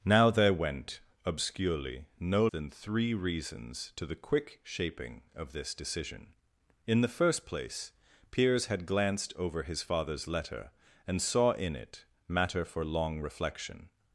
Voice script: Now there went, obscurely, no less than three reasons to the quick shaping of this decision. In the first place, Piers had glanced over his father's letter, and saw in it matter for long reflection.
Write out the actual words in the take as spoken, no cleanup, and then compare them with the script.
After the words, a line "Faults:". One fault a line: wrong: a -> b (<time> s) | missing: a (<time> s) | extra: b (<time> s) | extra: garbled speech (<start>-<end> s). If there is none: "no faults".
Now there went, obscurely, no than three reasons to the quick shaping of this decision. In the first place, Piers had glanced over his father's letter, and saw in it matter for long reflection.
Faults:
missing: less (2.5 s)